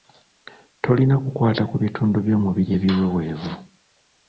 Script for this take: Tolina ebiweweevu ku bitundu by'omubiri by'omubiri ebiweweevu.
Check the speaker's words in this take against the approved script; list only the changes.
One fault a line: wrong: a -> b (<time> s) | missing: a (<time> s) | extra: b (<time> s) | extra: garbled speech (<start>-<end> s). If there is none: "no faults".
wrong: ebiweweevu -> kukwata (1.2 s)
missing: by'omubiri (2.7 s)